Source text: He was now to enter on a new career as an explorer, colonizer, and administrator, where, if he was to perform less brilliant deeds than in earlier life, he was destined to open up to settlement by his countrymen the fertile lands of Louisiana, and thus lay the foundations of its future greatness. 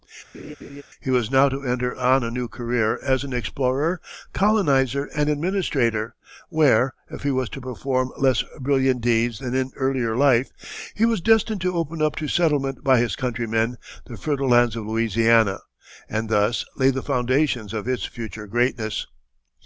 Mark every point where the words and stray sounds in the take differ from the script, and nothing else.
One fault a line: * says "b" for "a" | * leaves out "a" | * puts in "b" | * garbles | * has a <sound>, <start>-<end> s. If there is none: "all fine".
* has a laugh, 0.3-0.8 s